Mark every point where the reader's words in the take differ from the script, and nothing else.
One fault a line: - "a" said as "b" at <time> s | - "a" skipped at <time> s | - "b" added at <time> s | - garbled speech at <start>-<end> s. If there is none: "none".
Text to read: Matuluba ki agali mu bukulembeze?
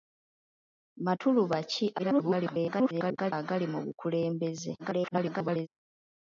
- garbled speech at 2.0-3.3 s
- garbled speech at 4.8-5.7 s